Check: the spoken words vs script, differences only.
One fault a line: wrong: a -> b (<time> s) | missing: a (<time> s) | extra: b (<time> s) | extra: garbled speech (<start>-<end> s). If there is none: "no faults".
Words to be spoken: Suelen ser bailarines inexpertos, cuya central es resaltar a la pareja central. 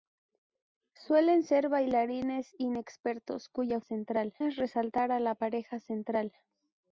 no faults